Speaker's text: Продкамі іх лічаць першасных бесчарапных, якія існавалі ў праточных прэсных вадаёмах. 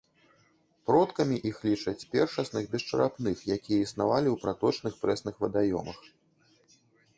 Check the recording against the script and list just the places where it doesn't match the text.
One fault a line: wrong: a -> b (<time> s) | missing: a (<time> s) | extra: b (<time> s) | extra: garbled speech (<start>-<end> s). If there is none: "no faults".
no faults